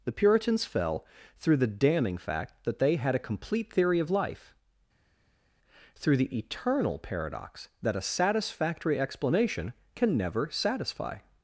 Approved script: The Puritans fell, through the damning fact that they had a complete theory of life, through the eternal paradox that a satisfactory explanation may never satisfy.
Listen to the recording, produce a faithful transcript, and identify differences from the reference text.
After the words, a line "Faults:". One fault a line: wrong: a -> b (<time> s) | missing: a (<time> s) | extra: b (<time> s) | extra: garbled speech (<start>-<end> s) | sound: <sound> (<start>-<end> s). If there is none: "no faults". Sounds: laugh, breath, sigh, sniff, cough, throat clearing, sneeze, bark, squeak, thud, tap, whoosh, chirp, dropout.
The Puritans fell, through the damning fact that they had a complete theory of life, through the eternal paradox that a satisfactory explanation can never satisfy.
Faults:
wrong: may -> can (9.9 s)